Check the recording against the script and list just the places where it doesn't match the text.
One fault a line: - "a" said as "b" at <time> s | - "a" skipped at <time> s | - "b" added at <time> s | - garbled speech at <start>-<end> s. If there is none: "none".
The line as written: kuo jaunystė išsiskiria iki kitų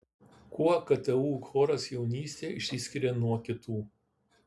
- "ktu choras" added at 0.9 s
- "iki" said as "nuo" at 3.2 s